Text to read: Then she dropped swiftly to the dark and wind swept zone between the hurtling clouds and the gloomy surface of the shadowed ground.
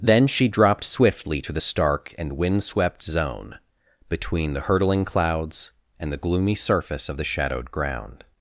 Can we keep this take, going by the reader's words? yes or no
no